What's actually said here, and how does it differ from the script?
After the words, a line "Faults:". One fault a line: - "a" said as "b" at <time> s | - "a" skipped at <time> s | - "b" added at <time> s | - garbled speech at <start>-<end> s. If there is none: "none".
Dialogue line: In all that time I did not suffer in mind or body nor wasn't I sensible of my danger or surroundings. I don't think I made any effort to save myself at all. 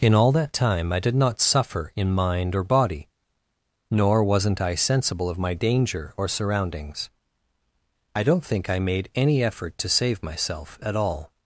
In all that time I did not suffer in mind or body nor wasn't I sensible of my danger or surroundings. I don't think I made any effort to save myself at all.
Faults:
none